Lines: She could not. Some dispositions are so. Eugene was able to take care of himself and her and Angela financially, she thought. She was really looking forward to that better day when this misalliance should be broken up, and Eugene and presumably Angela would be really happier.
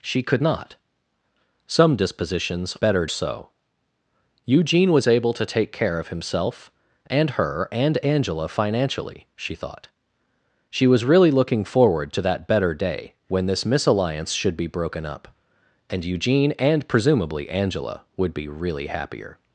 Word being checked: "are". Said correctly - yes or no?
no